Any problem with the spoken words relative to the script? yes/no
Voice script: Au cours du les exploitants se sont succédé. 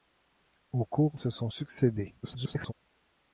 yes